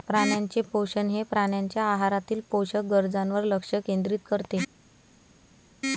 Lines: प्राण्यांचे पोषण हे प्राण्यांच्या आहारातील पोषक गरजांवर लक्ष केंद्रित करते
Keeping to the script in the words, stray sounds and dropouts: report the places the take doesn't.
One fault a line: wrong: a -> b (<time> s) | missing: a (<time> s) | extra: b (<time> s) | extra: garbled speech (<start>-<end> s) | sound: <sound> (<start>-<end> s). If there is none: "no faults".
no faults